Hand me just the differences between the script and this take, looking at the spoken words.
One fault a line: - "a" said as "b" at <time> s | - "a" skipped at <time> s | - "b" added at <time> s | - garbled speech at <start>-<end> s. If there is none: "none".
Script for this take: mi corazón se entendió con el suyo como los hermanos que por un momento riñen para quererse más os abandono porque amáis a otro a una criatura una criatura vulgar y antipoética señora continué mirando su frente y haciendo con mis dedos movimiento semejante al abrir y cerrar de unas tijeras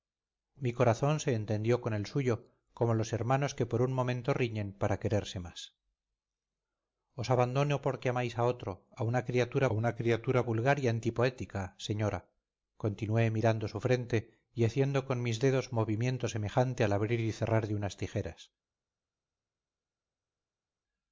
none